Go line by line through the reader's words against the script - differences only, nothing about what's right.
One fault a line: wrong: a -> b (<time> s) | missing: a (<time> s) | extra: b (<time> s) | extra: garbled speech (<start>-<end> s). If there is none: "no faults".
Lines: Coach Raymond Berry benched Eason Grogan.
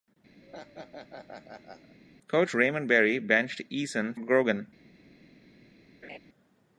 no faults